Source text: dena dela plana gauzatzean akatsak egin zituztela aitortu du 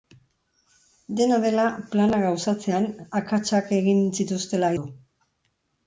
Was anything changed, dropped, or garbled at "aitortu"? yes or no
yes